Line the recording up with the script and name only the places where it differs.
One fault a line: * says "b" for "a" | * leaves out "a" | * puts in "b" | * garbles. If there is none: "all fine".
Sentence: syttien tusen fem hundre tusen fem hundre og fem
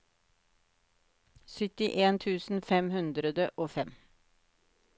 * leaves out "tusen fem hundre"